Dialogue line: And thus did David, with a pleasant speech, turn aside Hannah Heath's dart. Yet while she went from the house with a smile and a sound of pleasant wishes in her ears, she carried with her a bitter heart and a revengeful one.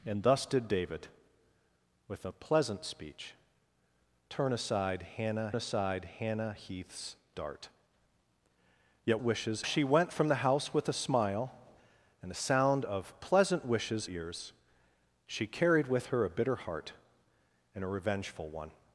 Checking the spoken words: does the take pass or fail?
fail